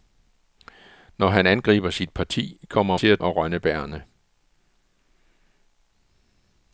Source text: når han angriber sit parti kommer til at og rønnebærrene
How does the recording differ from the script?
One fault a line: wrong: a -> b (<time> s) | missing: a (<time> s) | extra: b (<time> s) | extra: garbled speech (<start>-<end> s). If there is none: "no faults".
no faults